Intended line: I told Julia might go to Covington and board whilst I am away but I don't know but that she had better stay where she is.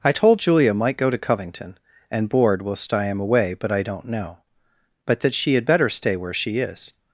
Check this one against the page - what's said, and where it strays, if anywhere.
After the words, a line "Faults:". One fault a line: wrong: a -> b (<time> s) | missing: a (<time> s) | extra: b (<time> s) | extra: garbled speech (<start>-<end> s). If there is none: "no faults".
I told Julia might go to Covington and board whilst I am away but I don't know but that she had better stay where she is.
Faults:
no faults